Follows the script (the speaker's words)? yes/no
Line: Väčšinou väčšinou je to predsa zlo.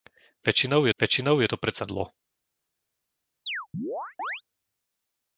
yes